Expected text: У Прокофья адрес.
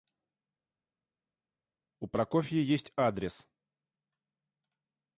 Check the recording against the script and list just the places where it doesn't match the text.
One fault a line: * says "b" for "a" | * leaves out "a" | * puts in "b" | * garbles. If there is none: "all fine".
* puts in "есть"